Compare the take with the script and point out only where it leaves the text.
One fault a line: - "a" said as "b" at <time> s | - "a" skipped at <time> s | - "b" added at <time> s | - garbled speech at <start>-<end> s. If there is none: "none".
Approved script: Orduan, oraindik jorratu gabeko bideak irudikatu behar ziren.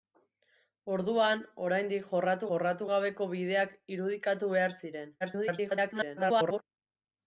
- "jorratu" added at 2.5 s
- garbled speech at 5.2-6.6 s